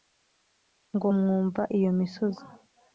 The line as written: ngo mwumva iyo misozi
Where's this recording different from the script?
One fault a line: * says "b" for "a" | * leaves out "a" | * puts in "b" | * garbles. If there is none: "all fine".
all fine